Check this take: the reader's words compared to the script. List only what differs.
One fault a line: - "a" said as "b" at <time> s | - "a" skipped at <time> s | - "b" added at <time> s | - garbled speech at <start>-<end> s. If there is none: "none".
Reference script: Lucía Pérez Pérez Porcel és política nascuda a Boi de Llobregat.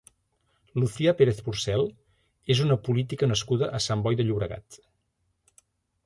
- "Pérez" skipped at 1.4 s
- "una" added at 2.7 s
- "Sant" added at 3.9 s